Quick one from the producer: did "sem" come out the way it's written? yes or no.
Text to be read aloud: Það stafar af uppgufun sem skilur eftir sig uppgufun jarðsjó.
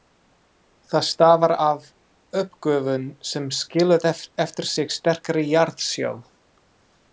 yes